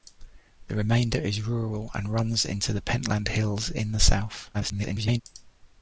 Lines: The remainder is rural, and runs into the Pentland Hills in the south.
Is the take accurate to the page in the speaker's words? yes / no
no